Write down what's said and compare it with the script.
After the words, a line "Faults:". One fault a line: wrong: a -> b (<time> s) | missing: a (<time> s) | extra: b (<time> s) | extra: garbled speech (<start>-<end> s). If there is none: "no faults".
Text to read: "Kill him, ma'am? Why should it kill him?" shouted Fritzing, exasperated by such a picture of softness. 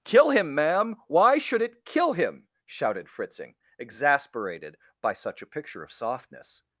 "Kill him, ma'am? Why should it kill him?" shouted Fritzing, exasperated by such a picture of softness.
Faults:
no faults